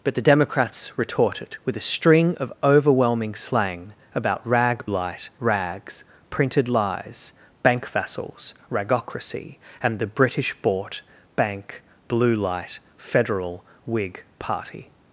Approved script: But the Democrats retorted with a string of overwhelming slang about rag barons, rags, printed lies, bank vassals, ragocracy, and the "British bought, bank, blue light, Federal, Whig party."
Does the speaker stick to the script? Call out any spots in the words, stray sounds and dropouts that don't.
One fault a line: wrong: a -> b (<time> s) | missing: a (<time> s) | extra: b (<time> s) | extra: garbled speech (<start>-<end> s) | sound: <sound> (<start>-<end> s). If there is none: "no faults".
wrong: barons -> light (4.9 s)